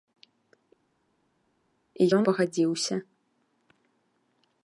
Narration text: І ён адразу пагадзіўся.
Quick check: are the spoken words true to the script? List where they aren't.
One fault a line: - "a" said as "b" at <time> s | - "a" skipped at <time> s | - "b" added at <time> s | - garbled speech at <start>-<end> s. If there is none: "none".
- "адразу" skipped at 2.2 s